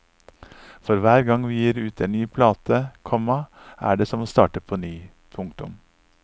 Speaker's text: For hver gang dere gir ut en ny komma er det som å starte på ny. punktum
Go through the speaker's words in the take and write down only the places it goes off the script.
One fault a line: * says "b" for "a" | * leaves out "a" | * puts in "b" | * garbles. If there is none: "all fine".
* says "vi" for "dere"
* puts in "plate"